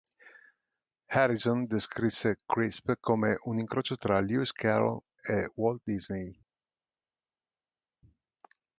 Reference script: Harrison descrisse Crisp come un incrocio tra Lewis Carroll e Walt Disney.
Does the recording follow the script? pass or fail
pass